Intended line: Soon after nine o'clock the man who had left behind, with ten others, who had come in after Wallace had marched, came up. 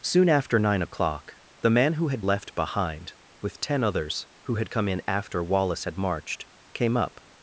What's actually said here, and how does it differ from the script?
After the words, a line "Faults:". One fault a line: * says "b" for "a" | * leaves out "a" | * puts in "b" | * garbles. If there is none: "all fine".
Soon after nine o'clock the man who had left behind, with ten others, who had come in after Wallace had marched, came up.
Faults:
all fine